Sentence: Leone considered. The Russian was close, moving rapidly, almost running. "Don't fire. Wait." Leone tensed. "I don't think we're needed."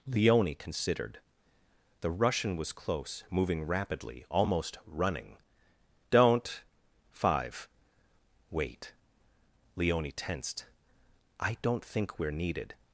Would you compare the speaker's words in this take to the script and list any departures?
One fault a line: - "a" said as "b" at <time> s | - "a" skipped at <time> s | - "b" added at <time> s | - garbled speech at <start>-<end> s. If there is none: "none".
- "fire" said as "five" at 7.1 s